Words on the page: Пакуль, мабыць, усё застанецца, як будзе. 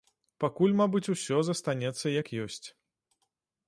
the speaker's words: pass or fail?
fail